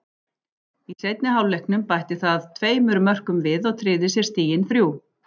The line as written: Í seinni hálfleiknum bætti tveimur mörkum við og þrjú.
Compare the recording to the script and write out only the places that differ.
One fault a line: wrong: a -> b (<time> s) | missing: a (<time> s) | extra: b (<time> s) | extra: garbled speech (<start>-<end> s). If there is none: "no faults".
extra: það (2.2 s)
extra: tryggði sér stigin (3.8 s)